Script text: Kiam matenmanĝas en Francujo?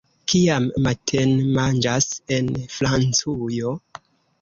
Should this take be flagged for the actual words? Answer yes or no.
no